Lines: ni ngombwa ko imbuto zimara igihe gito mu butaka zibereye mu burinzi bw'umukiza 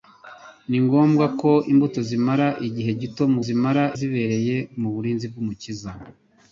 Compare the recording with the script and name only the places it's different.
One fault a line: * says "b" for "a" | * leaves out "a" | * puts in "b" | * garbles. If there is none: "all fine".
* says "zimara" for "butaka"